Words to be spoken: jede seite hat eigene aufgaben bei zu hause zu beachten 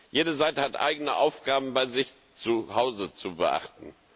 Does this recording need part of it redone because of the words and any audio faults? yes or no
yes